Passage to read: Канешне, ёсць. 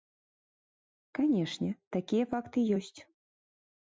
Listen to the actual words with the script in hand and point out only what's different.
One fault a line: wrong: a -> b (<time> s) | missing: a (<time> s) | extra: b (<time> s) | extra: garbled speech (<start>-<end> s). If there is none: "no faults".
extra: такія факты (2.0 s)